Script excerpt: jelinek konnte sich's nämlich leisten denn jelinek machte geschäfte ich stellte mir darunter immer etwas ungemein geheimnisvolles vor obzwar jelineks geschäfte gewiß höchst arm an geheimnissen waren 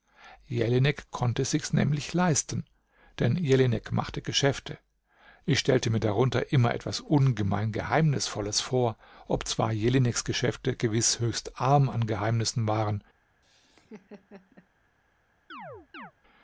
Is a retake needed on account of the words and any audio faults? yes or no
yes